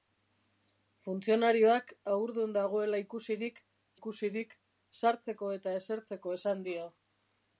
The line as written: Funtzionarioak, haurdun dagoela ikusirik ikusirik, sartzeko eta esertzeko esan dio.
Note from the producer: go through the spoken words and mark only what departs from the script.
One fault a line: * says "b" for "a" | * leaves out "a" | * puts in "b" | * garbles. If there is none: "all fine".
all fine